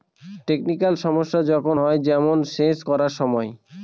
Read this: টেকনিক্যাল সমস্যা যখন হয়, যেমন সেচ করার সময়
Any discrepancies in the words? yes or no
no